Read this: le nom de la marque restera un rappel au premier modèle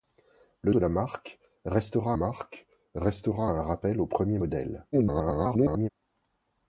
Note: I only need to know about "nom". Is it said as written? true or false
false